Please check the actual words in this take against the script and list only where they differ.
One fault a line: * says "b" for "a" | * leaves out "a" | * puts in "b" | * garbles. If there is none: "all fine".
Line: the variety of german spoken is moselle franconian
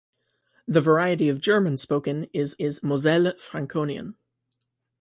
* puts in "is"